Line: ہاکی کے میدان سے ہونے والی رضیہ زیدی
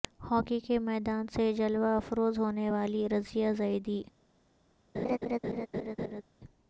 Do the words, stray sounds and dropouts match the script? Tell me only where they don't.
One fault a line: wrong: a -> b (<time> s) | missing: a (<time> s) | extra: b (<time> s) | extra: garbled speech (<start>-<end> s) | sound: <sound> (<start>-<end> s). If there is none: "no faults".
extra: جلوہ افروز (1.5 s)
sound: laugh (4.9-6.2 s)